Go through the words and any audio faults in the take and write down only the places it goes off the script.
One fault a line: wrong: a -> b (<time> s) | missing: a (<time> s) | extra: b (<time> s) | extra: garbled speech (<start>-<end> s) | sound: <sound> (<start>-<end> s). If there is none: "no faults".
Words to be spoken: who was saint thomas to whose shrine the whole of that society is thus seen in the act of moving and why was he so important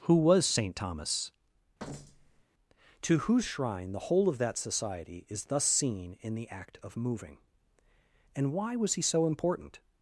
sound: thud (1.8-2.4 s)